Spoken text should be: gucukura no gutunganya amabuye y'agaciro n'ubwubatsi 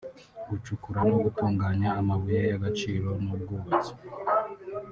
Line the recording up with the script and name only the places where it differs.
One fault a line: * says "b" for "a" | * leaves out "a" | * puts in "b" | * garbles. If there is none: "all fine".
all fine